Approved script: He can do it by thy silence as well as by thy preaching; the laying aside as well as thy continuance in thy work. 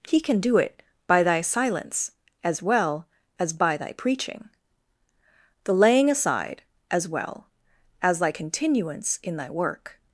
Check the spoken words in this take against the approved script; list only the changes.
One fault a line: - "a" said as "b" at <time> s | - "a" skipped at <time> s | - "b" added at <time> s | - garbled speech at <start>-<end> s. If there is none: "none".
none